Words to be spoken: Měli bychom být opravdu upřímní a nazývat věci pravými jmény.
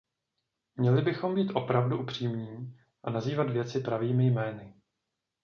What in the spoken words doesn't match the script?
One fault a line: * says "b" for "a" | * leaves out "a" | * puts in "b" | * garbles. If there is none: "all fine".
all fine